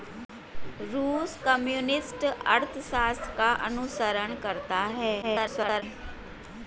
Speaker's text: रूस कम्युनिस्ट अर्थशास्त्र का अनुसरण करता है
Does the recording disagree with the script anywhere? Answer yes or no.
yes